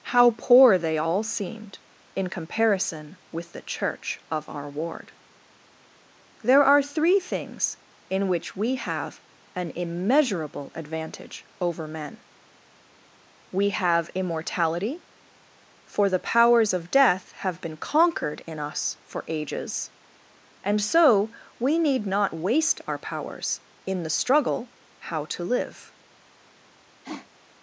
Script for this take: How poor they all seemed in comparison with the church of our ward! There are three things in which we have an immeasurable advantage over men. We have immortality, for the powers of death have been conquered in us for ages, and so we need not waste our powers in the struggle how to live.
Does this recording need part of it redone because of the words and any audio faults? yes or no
yes